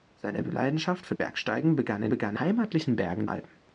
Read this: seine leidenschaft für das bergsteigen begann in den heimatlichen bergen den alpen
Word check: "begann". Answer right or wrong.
right